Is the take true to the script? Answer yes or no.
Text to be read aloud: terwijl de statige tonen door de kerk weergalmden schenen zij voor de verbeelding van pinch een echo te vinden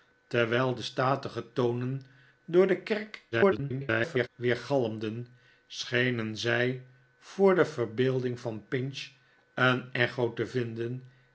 no